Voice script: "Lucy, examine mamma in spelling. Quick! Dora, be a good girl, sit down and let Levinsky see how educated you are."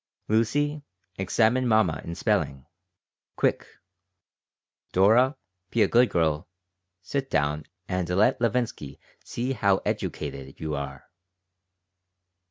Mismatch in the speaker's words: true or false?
false